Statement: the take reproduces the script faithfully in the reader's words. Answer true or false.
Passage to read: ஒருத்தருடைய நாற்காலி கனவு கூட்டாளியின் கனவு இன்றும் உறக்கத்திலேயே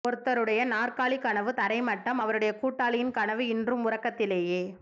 false